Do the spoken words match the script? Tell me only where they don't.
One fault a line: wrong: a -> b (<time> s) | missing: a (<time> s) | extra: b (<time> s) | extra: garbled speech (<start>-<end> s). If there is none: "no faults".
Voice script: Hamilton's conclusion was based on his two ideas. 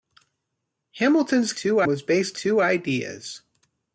wrong: conclusion -> two (1.5 s)
missing: on his (2.4 s)